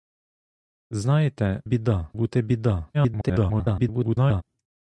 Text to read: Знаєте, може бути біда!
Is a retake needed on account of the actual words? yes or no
yes